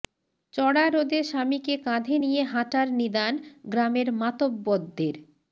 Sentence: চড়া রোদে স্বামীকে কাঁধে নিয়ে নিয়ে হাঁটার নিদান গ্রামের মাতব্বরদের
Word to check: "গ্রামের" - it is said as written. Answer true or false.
true